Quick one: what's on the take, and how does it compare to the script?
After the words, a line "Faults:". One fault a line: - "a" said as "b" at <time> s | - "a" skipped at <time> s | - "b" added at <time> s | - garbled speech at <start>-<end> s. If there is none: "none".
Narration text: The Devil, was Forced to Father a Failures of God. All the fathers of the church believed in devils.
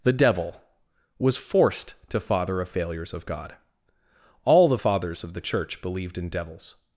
The Devil, was Forced to Father a Failures of God. All the fathers of the church believed in devils.
Faults:
none